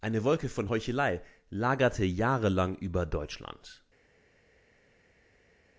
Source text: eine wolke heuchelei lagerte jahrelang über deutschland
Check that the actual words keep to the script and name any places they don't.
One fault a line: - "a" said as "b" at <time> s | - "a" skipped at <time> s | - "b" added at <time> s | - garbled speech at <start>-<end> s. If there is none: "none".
- "von" added at 0.5 s